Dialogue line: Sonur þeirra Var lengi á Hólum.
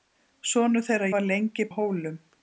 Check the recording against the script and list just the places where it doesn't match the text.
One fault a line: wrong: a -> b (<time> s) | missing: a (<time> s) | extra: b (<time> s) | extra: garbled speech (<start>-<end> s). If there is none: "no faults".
no faults